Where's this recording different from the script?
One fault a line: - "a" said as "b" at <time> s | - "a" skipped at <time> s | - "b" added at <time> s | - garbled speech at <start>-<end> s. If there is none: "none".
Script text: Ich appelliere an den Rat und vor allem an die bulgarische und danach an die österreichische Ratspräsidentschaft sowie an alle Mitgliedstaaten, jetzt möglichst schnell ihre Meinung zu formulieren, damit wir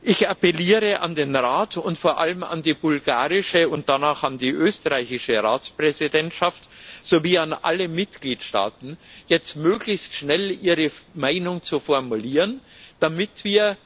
none